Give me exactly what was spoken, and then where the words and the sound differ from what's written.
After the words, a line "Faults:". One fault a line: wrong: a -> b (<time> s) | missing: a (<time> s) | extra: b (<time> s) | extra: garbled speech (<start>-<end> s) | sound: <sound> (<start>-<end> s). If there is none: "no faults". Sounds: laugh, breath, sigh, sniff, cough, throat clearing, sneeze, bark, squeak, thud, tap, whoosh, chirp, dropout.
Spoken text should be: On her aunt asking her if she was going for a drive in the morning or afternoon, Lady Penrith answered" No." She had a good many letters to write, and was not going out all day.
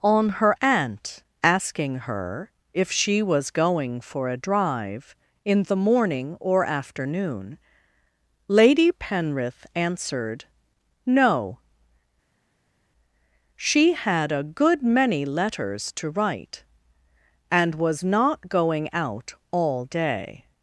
On her aunt asking her if she was going for a drive in the morning or afternoon, Lady Penrith answered" No." She had a good many letters to write, and was not going out all day.
Faults:
no faults